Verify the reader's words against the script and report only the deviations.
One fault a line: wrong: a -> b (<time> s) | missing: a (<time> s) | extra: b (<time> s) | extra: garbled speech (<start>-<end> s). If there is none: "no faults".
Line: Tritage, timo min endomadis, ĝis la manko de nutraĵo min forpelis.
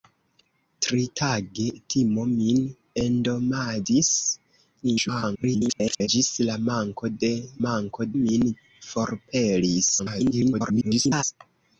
extra: garbled speech (4.8-6.1 s)
wrong: nutraĵo -> manko (7.7 s)
extra: garbled speech (10.0-11.2 s)